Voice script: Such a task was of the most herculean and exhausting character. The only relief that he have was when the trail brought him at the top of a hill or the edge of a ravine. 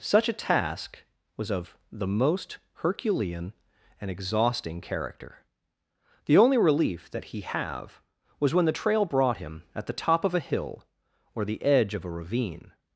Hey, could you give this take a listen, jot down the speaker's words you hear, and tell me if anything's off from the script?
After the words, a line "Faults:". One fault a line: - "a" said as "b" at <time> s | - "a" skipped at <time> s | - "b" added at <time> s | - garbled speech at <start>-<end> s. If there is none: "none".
Such a task was of the most herculean and exhausting character. The only relief that he have was when the trail brought him at the top of a hill or the edge of a ravine.
Faults:
none